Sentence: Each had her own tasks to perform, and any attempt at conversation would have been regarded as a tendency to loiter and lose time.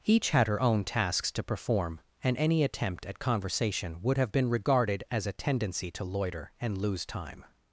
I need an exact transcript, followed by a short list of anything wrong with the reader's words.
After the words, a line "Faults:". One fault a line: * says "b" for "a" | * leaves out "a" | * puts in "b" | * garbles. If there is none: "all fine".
Each had her own tasks to perform, and any attempt at conversation would have been regarded as a tendency to loiter and lose time.
Faults:
all fine